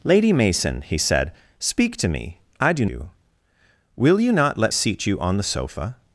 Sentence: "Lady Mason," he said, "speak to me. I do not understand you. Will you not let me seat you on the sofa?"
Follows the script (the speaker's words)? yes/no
no